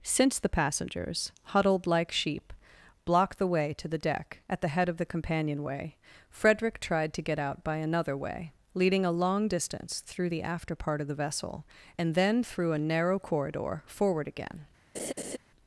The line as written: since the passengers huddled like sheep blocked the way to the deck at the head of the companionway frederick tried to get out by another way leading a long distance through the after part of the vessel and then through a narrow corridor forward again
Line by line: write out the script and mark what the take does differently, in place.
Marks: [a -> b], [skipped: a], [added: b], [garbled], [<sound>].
since the passengers huddled like sheep blocked the way to the deck at the head of the companionway frederick tried to get out by another way leading a long distance through the after part of the vessel and then through a narrow corridor forward again [laugh]